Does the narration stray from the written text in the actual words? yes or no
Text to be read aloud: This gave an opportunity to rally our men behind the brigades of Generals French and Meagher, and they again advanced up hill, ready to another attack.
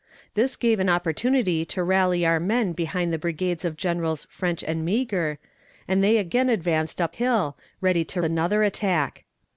no